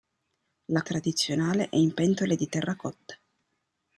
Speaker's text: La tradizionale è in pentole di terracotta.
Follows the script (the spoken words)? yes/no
yes